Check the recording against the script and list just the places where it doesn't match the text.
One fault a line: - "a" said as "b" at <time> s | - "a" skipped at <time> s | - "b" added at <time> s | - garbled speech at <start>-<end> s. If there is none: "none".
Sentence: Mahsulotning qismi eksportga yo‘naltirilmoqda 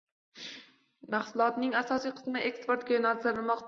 - "asosiy" added at 1.9 s